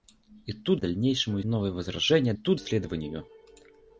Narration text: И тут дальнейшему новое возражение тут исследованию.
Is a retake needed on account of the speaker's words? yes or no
no